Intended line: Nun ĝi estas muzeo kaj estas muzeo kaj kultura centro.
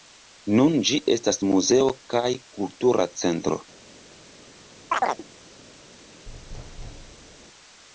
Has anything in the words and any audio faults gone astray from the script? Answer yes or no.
yes